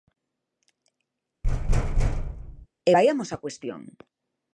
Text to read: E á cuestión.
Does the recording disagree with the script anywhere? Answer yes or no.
yes